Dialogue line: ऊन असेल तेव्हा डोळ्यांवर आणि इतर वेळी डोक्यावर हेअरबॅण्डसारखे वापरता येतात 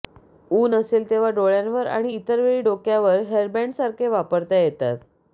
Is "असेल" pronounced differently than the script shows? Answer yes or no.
no